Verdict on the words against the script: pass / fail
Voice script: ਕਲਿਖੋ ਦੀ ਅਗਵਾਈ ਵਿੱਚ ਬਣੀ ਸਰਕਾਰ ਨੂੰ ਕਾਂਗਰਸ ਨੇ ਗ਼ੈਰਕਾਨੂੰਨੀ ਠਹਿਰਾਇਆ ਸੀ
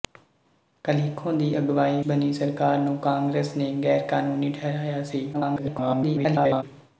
fail